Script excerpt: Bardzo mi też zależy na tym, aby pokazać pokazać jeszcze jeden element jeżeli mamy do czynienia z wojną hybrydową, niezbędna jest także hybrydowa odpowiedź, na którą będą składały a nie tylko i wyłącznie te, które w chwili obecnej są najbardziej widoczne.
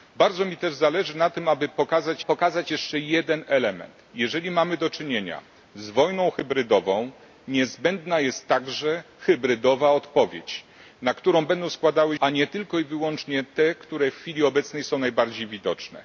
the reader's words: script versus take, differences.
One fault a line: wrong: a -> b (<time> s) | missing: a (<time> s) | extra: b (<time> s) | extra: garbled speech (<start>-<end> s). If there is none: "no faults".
no faults